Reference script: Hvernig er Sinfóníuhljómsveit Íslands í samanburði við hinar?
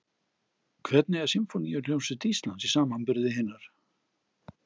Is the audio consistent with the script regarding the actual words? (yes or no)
yes